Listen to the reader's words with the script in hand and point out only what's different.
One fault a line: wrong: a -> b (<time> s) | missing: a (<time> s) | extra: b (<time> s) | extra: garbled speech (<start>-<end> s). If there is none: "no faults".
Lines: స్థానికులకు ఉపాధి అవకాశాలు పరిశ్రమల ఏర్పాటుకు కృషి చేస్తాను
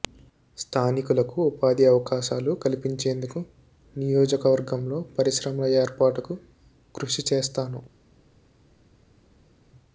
extra: కల్పించేందుకు నియోజకవర్గంలో (2.6 s)